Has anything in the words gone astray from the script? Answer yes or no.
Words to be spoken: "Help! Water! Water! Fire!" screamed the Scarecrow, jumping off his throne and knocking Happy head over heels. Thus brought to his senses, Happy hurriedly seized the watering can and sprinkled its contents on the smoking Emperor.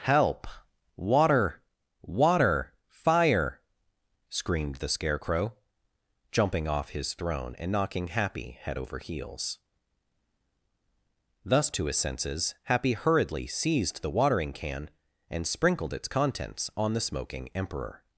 yes